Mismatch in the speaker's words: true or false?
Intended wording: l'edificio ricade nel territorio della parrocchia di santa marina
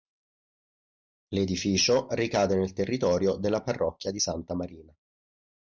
false